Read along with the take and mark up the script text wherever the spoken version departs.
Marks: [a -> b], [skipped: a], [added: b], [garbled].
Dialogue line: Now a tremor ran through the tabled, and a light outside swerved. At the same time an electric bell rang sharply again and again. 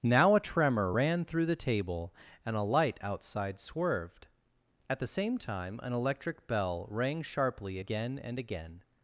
Now a tremor ran through the [tabled, -> table] and a light outside swerved. At the same time an electric bell rang sharply again and again.